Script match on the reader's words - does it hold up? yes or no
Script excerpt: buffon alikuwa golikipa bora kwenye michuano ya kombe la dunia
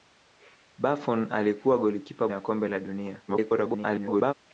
no